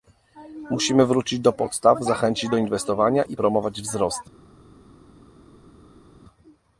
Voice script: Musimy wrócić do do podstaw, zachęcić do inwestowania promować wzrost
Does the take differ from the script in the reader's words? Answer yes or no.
yes